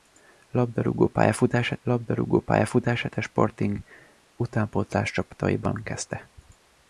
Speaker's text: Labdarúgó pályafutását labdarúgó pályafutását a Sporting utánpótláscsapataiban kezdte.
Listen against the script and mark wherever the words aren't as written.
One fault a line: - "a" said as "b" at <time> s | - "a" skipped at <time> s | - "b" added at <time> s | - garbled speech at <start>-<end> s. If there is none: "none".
none